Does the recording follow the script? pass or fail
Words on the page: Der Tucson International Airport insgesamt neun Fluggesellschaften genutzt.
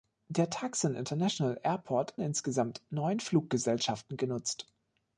pass